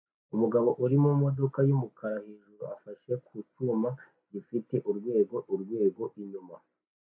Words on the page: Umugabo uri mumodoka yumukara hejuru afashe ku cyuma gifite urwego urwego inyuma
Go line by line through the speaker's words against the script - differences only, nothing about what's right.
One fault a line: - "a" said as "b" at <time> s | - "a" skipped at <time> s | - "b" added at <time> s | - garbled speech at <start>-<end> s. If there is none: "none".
none